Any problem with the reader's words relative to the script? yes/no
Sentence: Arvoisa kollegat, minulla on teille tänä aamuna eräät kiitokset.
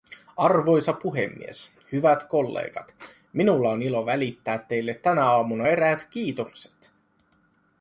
yes